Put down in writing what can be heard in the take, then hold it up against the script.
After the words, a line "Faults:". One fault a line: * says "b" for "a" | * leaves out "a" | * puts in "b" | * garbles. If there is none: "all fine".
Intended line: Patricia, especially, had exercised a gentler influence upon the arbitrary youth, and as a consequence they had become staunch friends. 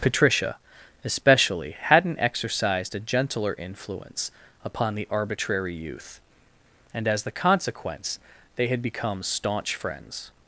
Patricia, especially, hadn't exercised a gentler influence upon the arbitrary youth, and as the consequence they had become staunch friends.
Faults:
* says "hadn't" for "had"
* says "the" for "a"